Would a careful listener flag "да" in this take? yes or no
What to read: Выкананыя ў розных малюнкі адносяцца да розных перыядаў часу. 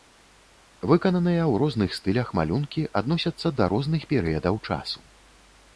no